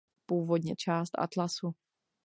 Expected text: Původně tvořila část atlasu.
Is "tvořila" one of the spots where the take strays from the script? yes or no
yes